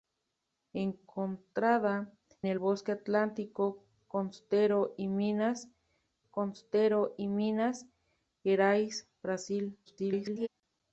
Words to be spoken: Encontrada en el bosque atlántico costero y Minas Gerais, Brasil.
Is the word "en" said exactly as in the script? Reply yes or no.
no